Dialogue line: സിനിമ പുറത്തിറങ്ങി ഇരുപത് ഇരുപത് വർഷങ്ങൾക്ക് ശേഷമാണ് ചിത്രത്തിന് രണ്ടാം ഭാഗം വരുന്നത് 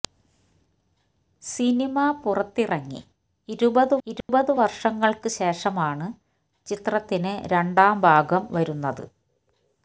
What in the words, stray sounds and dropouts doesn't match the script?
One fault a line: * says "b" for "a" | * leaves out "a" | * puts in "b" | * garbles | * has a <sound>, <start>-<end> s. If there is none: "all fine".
* has a dropout, 4.2-4.3 s